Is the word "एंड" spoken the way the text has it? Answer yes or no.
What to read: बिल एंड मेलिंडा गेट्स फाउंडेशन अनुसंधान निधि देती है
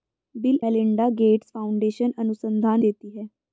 no